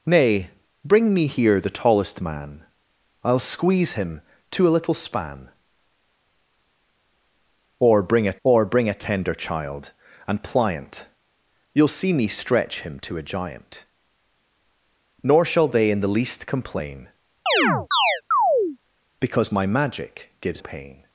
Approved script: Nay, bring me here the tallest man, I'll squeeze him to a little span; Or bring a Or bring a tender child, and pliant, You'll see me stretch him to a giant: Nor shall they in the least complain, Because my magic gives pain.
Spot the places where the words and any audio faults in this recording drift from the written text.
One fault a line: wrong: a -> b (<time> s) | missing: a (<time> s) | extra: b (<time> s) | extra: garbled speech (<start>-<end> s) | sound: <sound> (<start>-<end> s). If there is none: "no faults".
sound: chirp (17.5-18.8 s)